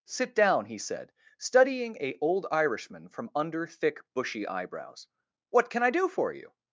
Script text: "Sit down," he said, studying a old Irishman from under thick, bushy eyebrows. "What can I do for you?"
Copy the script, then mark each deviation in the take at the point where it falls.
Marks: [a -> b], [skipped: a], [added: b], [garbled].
"Sit down," he said, studying a old Irishman from under thick, bushy eyebrows. "What can I do for you?"